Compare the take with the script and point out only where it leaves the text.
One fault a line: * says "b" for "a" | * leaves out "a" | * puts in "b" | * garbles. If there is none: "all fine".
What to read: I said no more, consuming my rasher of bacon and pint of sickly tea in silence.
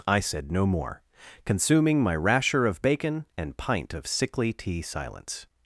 * leaves out "in"